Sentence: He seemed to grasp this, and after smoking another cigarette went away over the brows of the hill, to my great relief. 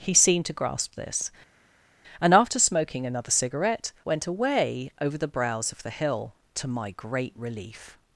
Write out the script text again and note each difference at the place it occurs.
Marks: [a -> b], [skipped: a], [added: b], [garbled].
He seemed to grasp this, and after smoking another cigarette went away over the brows of the hill, to my great relief.